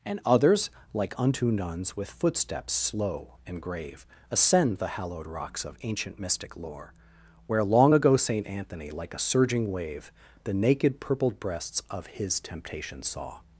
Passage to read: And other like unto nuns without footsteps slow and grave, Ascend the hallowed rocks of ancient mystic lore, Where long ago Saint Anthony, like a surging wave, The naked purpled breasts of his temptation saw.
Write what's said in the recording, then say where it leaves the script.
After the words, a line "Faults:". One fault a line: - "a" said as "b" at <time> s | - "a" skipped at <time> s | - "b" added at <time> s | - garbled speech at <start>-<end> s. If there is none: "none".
And others like unto nuns with footsteps slow and grave, Ascend the hallowed rocks of ancient mystic lore, Where long ago Saint Anthony, like a surging wave, The naked purpled breasts of his temptation saw.
Faults:
- "other" said as "others" at 0.2 s
- "without" said as "with" at 1.9 s